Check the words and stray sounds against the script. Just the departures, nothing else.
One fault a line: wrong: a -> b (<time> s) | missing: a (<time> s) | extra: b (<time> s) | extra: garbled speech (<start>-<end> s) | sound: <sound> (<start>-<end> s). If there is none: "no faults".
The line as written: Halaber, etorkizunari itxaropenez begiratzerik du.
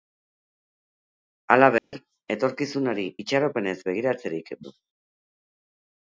sound: dropout (1.8-1.9 s)